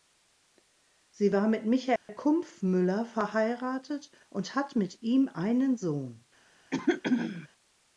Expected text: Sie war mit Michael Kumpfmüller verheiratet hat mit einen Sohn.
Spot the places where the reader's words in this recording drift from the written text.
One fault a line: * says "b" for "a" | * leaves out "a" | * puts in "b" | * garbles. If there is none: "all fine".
* puts in "und"
* puts in "ihm"